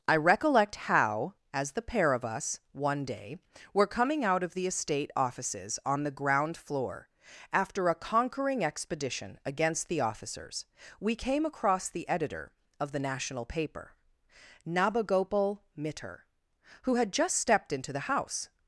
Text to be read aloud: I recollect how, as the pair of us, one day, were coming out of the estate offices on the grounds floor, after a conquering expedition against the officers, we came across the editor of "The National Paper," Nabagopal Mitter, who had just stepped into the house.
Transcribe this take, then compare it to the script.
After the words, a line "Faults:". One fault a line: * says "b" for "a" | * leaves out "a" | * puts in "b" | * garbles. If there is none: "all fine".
I recollect how, as the pair of us, one day, were coming out of the estate offices on the ground floor, after a conquering expedition against the officers, we came across the editor of "The National Paper," Nabagopal Mitter, who had just stepped into the house.
Faults:
* says "ground" for "grounds"